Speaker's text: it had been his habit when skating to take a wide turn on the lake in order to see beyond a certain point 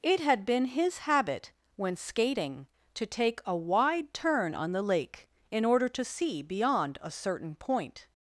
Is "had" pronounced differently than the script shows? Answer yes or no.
no